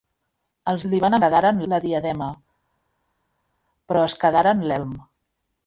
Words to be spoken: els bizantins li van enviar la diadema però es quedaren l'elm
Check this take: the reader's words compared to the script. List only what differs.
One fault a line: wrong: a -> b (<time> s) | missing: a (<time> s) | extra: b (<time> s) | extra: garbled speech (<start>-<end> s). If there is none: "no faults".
missing: bizantins (0.8 s)
wrong: enviar -> quedaren (1.2 s)